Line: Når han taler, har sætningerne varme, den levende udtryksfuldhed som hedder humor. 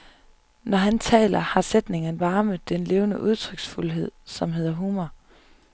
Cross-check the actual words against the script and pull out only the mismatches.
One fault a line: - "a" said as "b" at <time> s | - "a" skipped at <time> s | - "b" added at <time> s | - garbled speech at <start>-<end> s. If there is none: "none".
none